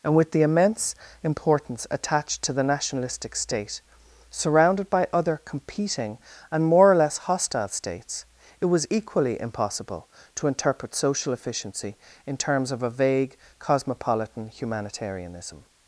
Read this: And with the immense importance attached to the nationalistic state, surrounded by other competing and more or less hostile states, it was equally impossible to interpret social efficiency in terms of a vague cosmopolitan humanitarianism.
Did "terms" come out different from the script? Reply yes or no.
no